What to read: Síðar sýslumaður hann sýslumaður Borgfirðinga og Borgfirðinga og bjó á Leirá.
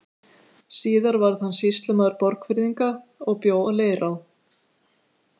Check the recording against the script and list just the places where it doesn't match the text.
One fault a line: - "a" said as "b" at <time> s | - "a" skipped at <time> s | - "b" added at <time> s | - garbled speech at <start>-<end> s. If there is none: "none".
- "sýslumaður" said as "varð" at 1.2 s
- "Borgfirðinga og" skipped at 3.4 s